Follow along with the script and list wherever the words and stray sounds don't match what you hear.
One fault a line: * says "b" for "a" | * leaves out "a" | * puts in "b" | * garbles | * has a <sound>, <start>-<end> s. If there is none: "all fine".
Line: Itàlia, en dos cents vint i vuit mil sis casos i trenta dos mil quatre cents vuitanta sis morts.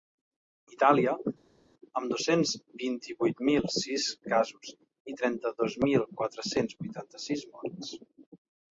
* says "amb" for "en"